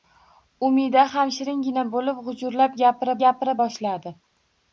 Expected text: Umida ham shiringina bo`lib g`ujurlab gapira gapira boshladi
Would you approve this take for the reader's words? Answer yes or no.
yes